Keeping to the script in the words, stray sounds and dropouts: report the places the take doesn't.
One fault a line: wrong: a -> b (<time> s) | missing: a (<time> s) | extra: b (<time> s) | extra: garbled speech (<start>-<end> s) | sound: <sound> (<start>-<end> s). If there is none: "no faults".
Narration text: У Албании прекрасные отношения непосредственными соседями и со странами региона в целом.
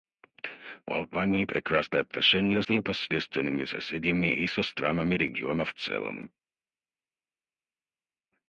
no faults